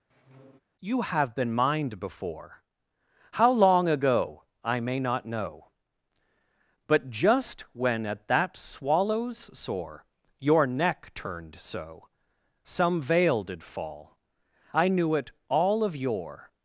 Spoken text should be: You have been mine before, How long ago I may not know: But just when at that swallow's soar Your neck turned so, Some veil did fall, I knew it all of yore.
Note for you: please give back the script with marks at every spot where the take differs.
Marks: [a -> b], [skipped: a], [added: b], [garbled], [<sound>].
[squeak] You have been [mine -> mined] before, How long ago I may not know: But just when at that swallow's soar Your neck turned so, Some veil did fall, I knew it all of yore.